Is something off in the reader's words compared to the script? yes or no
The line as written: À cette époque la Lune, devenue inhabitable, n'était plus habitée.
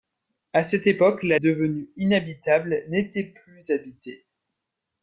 yes